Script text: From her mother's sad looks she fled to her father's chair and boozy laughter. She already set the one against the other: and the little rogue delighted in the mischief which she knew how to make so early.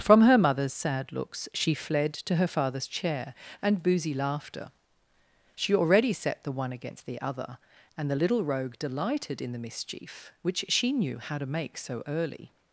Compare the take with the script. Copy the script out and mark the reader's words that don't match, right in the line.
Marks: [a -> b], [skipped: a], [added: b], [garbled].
From her mother's sad looks she fled to her father's chair and boozy laughter. She already set the one against the other: and the little rogue delighted in the mischief which she knew how to make so early.